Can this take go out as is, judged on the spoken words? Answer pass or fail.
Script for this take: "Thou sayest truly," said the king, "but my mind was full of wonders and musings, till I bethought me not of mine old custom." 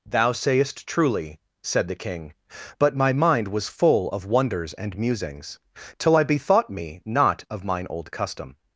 pass